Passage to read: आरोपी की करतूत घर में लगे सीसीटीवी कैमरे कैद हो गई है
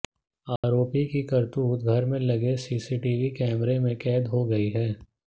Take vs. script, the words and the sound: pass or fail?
fail